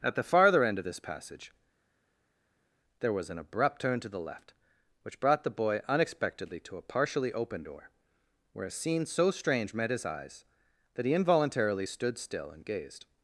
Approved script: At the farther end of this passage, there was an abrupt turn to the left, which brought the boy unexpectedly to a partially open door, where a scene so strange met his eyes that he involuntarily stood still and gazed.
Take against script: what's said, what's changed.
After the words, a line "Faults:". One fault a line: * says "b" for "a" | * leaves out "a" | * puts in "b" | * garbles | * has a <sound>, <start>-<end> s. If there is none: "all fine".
At the farther end of this passage, there was an abrupt turn to the left, which brought the boy unexpectedly to a partially open door, where a scene so strange met his eyes that he involuntarily stood still and gazed.
Faults:
all fine